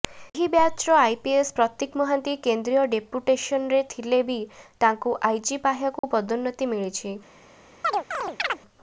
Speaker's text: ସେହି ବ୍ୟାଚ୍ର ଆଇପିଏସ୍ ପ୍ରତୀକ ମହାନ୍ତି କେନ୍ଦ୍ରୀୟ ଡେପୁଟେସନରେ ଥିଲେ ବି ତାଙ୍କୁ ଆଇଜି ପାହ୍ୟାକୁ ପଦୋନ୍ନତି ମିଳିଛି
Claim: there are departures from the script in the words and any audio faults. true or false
true